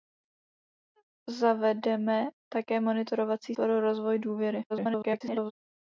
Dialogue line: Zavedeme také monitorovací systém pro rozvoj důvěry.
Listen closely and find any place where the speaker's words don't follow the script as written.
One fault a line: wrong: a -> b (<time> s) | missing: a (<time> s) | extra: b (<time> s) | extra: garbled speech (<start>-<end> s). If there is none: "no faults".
missing: systém (3.5 s)
extra: garbled speech (4.7-5.5 s)